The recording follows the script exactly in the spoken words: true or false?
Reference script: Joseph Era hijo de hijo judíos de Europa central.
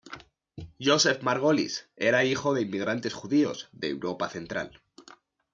false